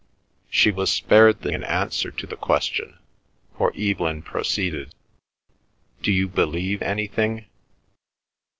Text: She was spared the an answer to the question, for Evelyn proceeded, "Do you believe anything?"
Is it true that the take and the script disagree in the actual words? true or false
false